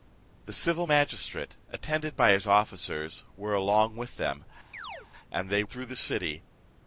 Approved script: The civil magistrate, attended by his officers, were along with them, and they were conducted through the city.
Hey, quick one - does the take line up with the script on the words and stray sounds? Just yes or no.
no